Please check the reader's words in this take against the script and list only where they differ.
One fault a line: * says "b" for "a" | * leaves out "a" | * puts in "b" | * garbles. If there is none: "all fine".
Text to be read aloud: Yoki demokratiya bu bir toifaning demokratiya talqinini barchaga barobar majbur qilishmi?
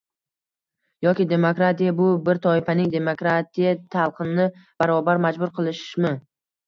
* leaves out "barchaga"